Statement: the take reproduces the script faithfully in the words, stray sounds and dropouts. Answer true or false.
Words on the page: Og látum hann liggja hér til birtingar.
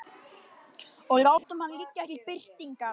false